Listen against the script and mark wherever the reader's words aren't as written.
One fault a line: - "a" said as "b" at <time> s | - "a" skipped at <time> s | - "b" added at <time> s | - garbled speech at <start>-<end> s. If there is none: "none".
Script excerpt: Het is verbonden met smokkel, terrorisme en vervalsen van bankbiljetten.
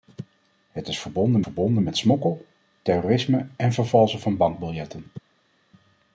- "verbonden" added at 1.4 s